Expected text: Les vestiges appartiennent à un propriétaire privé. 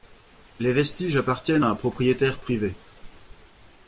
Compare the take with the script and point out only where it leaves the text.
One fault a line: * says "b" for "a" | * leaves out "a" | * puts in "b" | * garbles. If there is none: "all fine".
all fine